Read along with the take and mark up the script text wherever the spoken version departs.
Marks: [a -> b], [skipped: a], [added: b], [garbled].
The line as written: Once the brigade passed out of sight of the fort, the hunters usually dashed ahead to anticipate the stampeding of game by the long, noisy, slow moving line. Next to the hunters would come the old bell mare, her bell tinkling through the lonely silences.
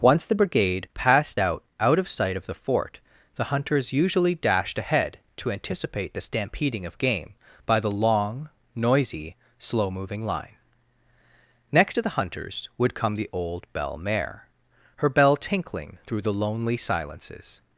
Once the brigade passed out [added: out] of sight of the fort, the hunters usually dashed ahead to anticipate the stampeding of game by the long, noisy, slow moving line. Next to the hunters would come the old bell mare, her bell tinkling through the lonely silences.